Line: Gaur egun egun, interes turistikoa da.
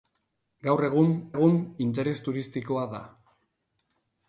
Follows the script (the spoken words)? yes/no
yes